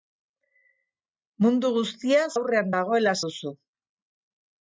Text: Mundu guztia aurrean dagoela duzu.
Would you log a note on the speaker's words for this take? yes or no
no